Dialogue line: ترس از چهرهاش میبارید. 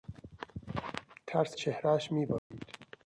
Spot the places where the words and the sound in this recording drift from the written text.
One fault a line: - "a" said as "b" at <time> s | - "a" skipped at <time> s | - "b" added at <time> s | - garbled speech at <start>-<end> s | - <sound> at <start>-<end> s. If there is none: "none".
- "از" skipped at 1.6 s
- dropout at 2.4-2.5 s